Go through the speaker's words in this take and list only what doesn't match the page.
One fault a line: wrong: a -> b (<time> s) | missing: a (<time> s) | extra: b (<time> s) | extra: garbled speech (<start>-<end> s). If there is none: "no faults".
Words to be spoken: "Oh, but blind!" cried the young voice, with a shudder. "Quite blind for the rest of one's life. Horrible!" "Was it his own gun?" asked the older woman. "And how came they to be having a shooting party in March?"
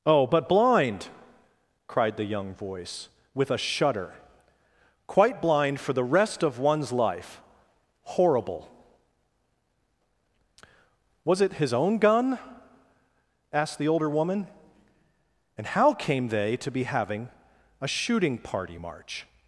missing: in (18.8 s)